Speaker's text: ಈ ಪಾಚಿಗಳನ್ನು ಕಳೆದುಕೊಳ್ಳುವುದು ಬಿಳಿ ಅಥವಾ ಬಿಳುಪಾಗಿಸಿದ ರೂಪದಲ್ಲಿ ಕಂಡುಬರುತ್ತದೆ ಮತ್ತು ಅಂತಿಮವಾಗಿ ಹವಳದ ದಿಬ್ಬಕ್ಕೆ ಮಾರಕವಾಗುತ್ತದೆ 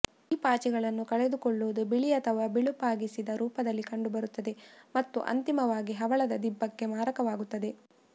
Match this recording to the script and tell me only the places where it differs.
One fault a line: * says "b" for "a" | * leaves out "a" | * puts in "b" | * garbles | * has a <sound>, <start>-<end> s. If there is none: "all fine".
all fine